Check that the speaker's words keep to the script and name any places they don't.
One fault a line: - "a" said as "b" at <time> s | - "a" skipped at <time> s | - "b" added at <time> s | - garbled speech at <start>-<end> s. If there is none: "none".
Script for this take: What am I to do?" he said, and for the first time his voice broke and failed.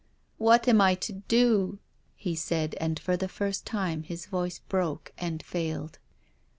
none